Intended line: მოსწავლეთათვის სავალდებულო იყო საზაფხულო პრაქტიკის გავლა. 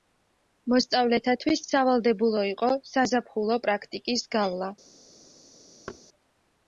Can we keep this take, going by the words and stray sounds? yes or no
no